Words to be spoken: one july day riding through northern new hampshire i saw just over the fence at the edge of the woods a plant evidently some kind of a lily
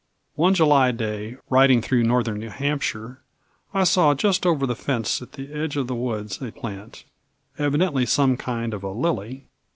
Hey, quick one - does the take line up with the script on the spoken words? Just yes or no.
yes